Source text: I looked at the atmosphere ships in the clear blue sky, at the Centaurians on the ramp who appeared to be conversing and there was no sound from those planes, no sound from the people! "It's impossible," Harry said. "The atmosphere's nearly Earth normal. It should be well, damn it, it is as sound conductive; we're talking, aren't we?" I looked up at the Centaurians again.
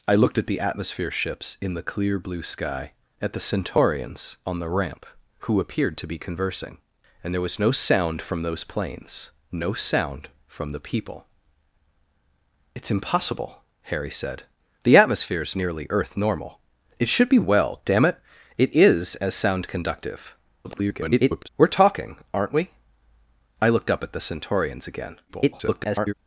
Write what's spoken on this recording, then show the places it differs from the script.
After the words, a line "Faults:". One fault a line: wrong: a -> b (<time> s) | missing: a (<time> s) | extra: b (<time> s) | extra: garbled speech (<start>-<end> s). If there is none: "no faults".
I looked at the atmosphere ships in the clear blue sky, at the Centaurians on the ramp who appeared to be conversing and there was no sound from those planes, no sound from the people! "It's impossible," Harry said. "The atmosphere's nearly Earth normal. It should be well, damn it, it is as sound conductive; [garbled] we're talking, aren't we?" I looked up at the Centaurians again. [garbled]
Faults:
extra: garbled speech (20.6-21.5 s)
extra: garbled speech (25.3-26.1 s)